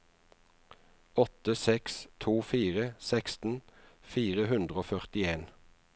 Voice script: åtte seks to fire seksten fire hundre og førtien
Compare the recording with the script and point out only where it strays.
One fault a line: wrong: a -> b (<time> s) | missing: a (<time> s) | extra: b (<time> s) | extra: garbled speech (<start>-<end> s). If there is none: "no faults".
no faults